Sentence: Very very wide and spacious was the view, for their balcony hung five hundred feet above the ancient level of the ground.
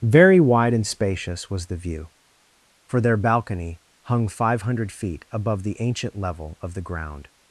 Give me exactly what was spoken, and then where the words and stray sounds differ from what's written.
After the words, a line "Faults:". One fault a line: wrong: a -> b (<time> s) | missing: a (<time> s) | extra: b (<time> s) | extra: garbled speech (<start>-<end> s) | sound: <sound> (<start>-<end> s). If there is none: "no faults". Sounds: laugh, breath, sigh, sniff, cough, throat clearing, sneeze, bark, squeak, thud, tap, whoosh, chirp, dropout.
Very wide and spacious was the view, for their balcony hung five hundred feet above the ancient level of the ground.
Faults:
missing: very (0.4 s)